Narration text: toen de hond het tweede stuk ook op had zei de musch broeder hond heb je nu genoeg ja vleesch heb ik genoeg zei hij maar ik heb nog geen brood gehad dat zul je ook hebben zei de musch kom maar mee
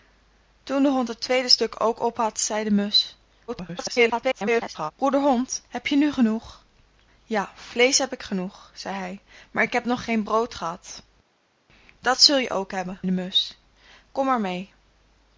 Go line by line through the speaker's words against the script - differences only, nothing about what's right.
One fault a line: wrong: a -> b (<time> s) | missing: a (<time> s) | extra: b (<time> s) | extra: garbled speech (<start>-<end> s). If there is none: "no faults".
extra: garbled speech (3.5-4.9 s)
missing: zei (13.0 s)